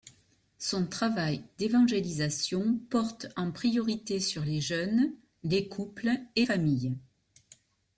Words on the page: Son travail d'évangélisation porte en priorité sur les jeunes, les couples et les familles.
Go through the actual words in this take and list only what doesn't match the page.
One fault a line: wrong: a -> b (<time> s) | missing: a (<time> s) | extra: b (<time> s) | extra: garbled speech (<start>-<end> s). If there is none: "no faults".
missing: les (6.5 s)